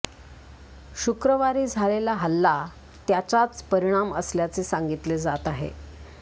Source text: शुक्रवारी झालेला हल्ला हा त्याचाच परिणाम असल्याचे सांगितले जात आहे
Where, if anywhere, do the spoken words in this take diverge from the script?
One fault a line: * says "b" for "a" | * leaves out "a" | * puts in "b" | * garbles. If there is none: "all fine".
* leaves out "हा"